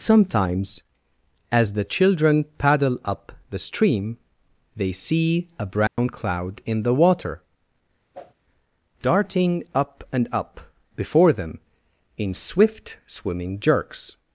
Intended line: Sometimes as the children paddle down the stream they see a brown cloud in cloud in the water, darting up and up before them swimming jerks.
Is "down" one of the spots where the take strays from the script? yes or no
yes